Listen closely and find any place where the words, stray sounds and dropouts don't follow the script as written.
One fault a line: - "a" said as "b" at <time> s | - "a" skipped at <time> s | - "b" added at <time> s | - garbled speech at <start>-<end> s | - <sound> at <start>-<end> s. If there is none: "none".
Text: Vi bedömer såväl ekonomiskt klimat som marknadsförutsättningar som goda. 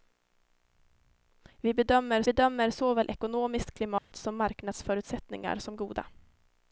- "bedömer" added at 2.2 s
- dropout at 4.0-4.1 s